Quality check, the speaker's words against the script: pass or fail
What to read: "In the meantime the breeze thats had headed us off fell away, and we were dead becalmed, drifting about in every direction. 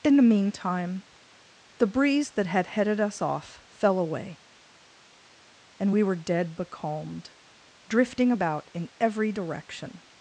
fail